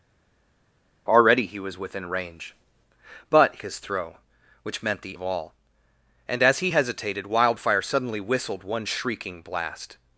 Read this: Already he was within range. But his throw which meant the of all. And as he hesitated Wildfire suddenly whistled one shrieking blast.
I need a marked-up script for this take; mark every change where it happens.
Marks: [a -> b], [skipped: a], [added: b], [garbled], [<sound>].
Already he was within range. But his throw which meant the of all. And as he hesitated Wildfire suddenly whistled one shrieking blast.